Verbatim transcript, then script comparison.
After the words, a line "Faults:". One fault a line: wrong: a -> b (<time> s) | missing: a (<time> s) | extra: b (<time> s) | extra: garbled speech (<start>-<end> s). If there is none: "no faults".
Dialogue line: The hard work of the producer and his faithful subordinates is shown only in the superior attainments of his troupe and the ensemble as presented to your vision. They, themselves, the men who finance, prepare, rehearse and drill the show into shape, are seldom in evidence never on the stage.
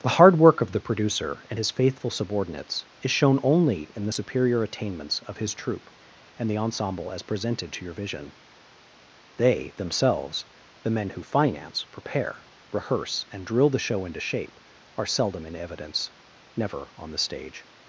The hard work of the producer and his faithful subordinates is shown only in the superior attainments of his troupe and the ensemble as presented to your vision. They, themselves, the men who finance, prepare, rehearse and drill the show into shape, are seldom in evidence never on the stage.
Faults:
no faults